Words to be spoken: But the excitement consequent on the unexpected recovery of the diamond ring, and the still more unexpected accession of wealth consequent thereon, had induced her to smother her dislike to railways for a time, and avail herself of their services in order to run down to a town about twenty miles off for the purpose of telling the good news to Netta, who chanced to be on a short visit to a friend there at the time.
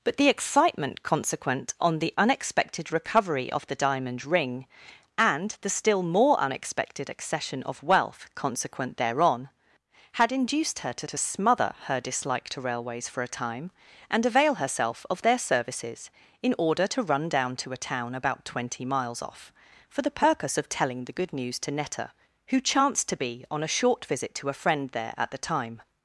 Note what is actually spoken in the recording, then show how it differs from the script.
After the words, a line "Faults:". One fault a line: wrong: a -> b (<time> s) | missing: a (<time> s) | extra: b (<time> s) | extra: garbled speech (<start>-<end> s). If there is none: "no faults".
But the excitement consequent on the unexpected recovery of the diamond ring, and the still more unexpected accession of wealth consequent thereon, had induced her to to smother her dislike to railways for a time, and avail herself of their services in order to run down to a town about twenty miles off for the purpose of telling the good news to Netta, who chanced to be on a short visit to a friend there at the time.
Faults:
extra: to (11.0 s)